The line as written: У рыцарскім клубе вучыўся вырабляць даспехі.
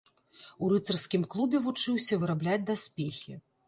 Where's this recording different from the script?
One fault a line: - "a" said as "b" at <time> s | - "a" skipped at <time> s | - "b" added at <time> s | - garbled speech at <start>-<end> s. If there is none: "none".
none